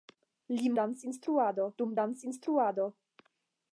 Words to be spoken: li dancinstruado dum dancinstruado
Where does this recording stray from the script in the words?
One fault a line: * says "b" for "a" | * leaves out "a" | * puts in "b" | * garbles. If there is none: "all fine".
all fine